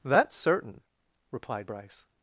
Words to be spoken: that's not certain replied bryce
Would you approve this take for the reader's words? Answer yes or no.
no